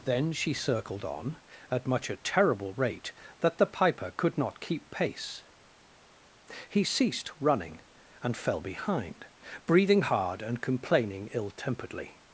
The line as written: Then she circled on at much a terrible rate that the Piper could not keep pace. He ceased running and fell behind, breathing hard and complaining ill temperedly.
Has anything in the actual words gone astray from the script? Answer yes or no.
no